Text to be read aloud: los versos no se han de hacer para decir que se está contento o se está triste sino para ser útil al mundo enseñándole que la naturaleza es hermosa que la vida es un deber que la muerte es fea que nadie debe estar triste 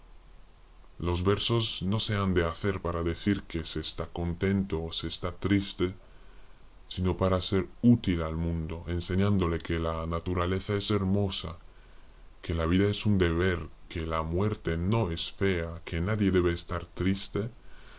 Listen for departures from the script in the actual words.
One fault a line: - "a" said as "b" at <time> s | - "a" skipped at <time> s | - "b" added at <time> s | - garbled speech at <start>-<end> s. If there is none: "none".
- "no" added at 14.8 s